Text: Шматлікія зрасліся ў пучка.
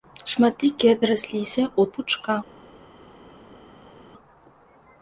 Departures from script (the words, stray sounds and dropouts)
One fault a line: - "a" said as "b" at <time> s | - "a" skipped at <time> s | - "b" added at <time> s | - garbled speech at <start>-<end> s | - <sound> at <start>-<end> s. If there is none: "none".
none